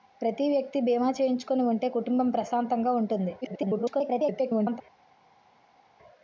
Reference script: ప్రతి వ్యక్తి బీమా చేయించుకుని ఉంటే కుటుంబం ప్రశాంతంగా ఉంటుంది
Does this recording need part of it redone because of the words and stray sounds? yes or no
yes